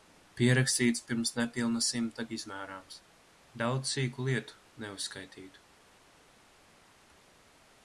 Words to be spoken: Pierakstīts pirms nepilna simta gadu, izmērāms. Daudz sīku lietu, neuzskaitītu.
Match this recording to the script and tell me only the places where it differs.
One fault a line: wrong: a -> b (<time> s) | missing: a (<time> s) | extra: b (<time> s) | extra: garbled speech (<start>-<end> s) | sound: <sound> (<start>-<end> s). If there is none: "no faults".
missing: gadu (2.2 s)